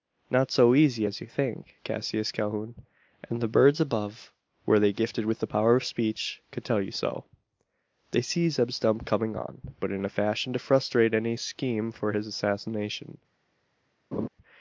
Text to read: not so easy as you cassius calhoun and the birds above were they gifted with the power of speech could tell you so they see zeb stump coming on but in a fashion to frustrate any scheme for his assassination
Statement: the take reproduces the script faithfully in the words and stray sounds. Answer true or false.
false